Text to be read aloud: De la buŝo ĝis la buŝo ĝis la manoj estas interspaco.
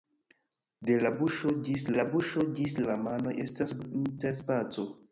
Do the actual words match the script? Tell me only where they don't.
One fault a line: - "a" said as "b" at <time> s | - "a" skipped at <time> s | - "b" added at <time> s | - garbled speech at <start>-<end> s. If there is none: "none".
none